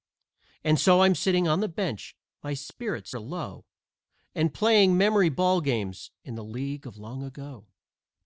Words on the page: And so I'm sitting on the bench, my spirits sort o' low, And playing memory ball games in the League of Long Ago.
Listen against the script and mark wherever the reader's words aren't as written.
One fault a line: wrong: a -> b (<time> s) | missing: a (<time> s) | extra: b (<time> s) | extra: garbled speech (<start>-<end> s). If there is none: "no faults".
missing: sort (3.1 s)